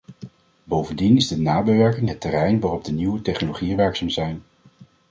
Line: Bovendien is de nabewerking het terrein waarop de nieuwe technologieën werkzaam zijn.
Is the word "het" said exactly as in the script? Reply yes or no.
yes